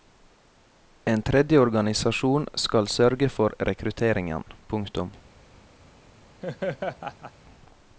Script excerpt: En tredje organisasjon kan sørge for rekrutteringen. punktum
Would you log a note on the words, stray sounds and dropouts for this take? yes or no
yes